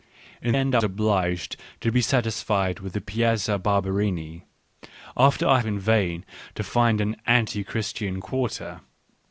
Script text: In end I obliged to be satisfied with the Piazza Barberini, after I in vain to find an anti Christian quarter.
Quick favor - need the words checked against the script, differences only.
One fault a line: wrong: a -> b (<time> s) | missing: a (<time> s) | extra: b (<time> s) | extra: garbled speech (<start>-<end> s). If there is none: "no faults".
no faults